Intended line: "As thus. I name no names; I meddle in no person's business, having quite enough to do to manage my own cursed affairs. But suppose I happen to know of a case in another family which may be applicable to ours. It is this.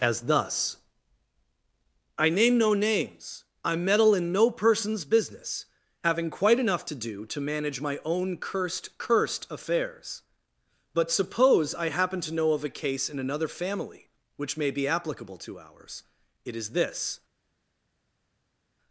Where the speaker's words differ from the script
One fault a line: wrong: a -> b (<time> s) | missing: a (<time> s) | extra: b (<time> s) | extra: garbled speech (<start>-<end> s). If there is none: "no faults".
extra: cursed (9.0 s)